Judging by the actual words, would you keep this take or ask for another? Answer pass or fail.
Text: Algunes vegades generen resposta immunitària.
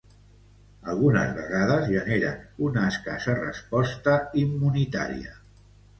fail